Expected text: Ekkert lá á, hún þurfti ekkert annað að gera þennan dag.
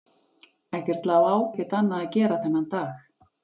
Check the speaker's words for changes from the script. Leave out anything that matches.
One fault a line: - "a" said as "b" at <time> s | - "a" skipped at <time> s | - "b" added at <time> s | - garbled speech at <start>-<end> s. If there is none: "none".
- "hún þurfti" skipped at 1.4 s